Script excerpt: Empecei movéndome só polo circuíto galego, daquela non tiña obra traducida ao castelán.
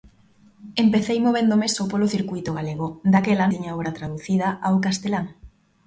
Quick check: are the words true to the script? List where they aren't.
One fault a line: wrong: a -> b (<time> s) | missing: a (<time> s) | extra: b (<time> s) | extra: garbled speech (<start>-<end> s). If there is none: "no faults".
missing: non (3.5 s)